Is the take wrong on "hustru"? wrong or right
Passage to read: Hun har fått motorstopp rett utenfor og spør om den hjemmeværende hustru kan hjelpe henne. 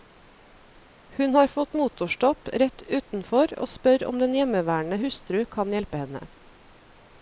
right